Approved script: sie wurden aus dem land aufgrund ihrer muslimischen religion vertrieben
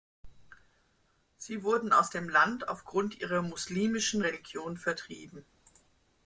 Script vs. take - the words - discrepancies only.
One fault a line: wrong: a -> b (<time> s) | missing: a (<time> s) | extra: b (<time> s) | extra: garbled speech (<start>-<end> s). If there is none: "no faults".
no faults